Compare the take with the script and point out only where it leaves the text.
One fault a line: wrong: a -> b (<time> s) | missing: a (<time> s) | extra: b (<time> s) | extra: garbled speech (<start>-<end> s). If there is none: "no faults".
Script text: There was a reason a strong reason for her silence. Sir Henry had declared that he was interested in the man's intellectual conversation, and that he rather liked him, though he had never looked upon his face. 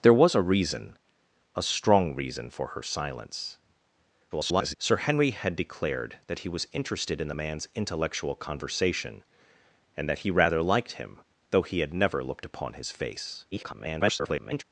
extra: garbled speech (4.3-4.7 s)
extra: garbled speech (13.5-14.6 s)